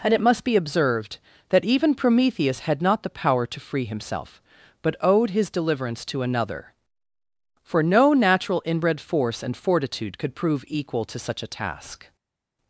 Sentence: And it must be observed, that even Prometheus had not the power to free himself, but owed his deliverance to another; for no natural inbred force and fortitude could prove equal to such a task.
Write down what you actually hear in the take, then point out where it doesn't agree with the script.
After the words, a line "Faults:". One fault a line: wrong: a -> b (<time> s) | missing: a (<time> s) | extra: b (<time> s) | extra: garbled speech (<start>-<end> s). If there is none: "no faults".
And it must be observed, that even Prometheus had not the power to free himself, but owed his deliverance to another; for no natural inbred force and fortitude could prove equal to such a task.
Faults:
no faults